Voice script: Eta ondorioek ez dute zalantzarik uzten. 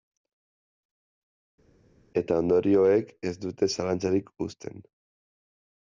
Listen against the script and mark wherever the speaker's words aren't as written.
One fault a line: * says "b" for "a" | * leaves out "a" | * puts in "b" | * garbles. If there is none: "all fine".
all fine